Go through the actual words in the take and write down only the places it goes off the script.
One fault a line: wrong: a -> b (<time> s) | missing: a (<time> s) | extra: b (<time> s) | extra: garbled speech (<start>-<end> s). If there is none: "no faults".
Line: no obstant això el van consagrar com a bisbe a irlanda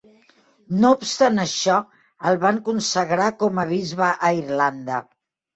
no faults